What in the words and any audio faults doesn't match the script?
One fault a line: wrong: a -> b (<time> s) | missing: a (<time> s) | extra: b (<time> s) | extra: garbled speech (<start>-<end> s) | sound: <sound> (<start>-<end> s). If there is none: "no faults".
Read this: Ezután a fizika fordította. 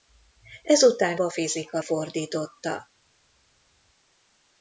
no faults